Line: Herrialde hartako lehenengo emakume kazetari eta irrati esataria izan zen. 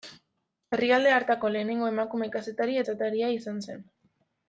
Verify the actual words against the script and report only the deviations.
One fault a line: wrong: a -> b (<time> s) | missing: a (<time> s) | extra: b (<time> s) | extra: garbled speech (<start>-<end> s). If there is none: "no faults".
missing: eta irrati (2.8 s)